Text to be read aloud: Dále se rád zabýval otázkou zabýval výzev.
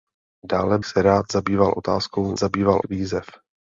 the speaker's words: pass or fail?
pass